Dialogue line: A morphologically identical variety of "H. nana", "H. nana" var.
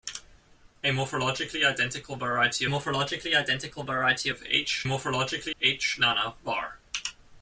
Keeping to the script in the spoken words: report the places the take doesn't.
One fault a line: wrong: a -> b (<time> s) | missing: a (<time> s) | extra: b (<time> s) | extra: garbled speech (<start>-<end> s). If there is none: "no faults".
extra: morphologically identical variety (2.6 s)
wrong: nana -> morphologically (4.8 s)